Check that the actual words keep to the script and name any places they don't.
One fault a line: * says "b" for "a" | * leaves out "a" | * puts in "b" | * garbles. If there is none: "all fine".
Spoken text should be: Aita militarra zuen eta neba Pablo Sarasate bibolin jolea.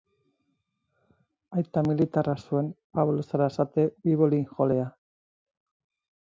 * leaves out "eta neba"